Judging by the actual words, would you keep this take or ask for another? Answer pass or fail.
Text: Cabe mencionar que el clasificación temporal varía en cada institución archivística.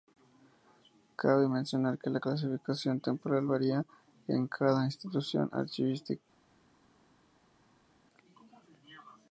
fail